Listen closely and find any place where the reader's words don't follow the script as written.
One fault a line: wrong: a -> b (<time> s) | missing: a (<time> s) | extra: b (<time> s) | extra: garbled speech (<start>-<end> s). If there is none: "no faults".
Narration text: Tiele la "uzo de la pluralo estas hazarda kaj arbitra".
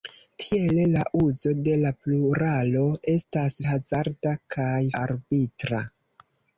no faults